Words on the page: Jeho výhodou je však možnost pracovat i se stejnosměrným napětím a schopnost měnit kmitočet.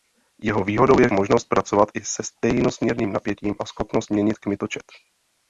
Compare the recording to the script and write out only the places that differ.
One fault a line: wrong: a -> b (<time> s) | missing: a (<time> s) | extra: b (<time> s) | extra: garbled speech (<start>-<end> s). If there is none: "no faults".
missing: však (1.1 s)